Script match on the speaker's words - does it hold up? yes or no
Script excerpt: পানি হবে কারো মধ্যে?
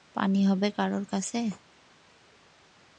no